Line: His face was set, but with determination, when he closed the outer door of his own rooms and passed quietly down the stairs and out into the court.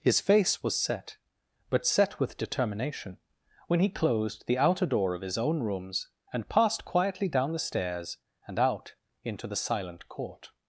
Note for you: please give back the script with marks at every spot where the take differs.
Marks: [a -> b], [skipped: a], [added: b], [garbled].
His face was set, but [added: set] with determination, when he closed the outer door of his own rooms and passed quietly down the stairs and out into the [added: silent] court.